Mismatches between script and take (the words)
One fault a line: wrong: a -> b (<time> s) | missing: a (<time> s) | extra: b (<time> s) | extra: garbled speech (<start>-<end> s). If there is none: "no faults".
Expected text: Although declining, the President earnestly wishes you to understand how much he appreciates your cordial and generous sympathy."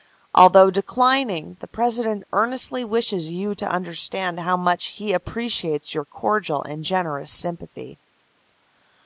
no faults